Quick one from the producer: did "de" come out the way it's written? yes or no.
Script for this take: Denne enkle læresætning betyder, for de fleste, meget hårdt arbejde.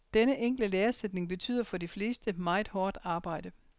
yes